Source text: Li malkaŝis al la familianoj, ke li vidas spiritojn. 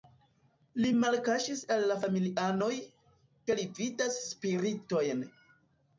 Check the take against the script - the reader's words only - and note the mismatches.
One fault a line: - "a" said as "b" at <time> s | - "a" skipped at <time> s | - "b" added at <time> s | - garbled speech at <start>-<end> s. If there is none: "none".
none